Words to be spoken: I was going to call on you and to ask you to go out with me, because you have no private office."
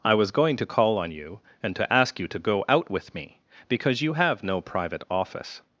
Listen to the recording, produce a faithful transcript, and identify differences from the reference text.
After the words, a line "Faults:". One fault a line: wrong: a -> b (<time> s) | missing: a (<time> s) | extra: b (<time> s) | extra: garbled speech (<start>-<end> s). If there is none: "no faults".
I was going to call on you and to ask you to go out with me, because you have no private office."
Faults:
no faults